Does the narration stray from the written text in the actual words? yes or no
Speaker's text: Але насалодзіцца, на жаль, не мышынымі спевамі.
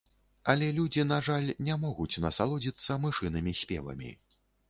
yes